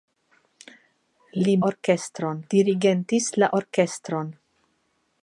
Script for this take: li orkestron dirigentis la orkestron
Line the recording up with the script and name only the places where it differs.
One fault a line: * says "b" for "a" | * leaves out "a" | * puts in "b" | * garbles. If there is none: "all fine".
all fine